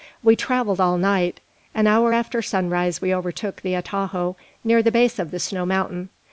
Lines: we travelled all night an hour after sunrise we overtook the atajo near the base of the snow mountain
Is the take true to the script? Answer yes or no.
yes